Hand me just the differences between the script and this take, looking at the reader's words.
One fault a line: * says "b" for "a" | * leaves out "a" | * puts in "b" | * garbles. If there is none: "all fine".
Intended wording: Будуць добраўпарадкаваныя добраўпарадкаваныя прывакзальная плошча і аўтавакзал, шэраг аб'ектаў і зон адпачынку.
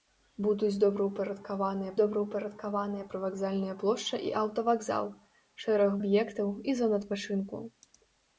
all fine